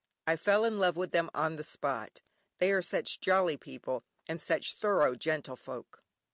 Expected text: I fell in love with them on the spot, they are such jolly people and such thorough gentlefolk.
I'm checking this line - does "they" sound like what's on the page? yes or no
yes